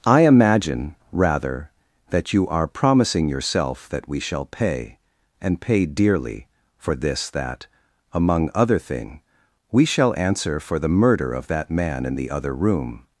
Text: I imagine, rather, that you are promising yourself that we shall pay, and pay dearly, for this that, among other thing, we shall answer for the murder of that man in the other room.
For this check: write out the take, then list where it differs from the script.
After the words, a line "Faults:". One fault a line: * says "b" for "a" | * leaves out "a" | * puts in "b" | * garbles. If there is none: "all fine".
I imagine, rather, that you are promising yourself that we shall pay, and pay dearly, for this that, among other thing, we shall answer for the murder of that man in the other room.
Faults:
all fine